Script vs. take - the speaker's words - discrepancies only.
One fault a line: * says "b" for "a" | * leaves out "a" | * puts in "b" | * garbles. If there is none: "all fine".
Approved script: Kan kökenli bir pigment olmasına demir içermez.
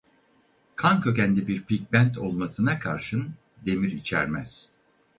* puts in "karşın"